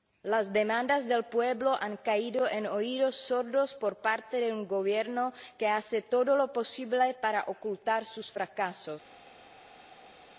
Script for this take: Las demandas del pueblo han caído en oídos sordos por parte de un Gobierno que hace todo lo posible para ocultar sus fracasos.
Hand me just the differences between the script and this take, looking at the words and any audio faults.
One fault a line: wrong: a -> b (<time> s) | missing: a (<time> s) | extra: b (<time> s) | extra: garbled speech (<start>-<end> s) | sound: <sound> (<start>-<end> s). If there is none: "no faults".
no faults